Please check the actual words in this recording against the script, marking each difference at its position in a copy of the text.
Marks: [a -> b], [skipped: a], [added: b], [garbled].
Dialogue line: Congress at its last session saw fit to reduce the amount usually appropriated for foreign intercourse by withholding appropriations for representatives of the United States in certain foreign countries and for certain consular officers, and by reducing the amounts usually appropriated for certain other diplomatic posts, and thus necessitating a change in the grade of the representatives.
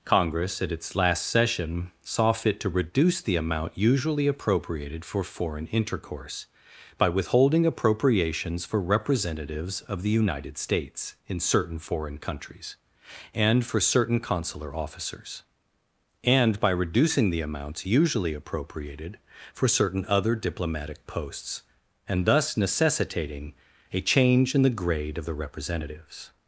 Congress at its last session saw fit to reduce the amount usually appropriated for foreign intercourse by withholding appropriations for representatives of the United States in certain foreign countries and for certain consular officers, and by reducing the amounts usually appropriated for certain other diplomatic posts, and thus necessitating a change in the grade of the representatives.